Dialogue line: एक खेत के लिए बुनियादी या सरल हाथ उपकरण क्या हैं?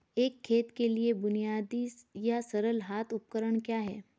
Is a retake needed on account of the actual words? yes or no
no